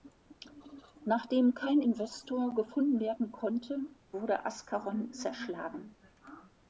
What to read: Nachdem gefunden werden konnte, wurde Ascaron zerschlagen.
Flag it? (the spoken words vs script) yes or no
yes